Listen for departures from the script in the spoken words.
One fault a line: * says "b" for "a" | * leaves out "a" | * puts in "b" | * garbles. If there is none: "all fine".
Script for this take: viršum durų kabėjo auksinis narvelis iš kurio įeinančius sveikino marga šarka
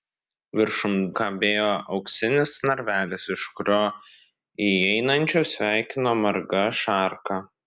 * leaves out "durų"